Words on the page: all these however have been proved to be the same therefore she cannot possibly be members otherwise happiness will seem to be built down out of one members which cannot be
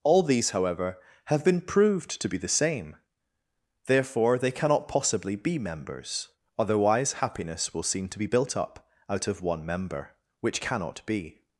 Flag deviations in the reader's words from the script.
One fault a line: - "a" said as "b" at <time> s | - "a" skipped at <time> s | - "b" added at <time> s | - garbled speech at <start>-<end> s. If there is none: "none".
- "she" said as "they" at 4.4 s
- "down" said as "up" at 8.5 s
- "members" said as "member" at 9.6 s